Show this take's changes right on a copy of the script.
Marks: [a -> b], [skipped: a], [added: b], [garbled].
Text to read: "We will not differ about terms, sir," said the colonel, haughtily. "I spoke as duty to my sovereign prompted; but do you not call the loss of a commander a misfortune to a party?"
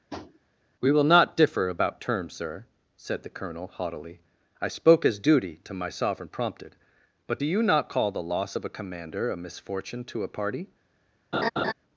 "We will not differ about terms, sir," said the colonel, haughtily. "I spoke as duty to my sovereign prompted; but do you not call the loss of a commander a misfortune to a party?"